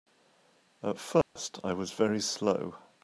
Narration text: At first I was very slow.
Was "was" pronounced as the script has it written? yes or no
yes